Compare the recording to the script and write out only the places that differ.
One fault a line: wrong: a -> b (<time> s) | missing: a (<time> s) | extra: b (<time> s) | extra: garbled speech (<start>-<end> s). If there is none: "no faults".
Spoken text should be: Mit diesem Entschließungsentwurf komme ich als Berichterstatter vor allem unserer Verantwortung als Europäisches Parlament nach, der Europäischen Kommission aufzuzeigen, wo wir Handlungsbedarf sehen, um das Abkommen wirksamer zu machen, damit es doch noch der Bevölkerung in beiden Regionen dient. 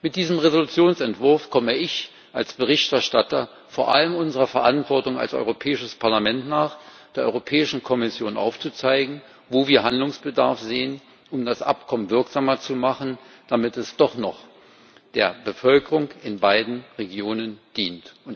no faults